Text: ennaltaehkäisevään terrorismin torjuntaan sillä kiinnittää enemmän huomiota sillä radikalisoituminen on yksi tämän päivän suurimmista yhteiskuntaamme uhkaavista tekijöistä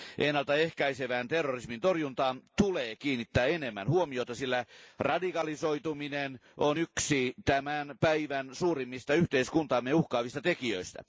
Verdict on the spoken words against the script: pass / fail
fail